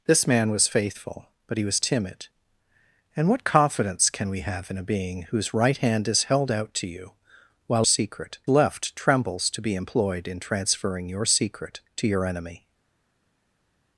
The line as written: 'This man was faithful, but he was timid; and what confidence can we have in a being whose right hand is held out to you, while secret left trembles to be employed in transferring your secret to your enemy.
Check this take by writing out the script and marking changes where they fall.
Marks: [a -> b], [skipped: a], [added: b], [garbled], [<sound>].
'This man was faithful, but he was timid; and what confidence can we have in a being whose right hand is held out to you, while secret left trembles to be employed in transferring your secret to your enemy.